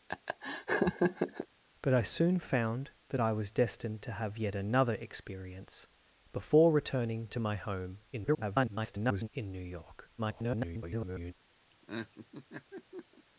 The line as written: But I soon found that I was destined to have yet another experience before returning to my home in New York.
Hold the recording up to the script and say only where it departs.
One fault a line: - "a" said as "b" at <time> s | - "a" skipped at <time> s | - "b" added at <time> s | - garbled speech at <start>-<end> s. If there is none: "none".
- garbled speech at 8.1-9.3 s
- garbled speech at 10.2-11.3 s